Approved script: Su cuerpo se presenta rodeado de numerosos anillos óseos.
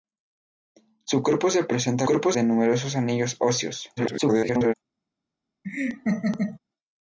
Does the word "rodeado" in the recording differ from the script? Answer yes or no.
yes